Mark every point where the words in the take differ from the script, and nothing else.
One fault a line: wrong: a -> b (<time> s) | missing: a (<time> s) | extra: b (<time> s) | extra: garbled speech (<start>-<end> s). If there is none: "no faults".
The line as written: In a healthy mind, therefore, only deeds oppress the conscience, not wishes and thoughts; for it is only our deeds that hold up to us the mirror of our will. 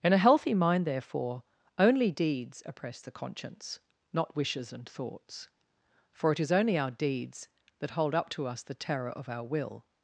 wrong: mirror -> terror (8.7 s)